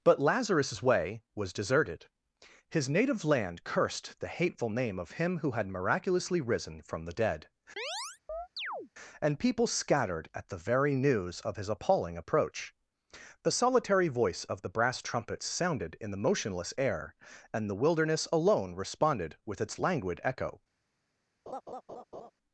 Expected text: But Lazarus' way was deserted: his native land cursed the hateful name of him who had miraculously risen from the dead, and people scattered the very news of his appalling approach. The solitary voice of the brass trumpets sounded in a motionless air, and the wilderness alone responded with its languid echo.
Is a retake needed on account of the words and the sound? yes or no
yes